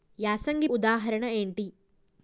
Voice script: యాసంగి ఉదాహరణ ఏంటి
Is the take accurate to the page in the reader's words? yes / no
yes